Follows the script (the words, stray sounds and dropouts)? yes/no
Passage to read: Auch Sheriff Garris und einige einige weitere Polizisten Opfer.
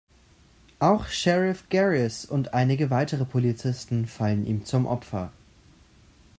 no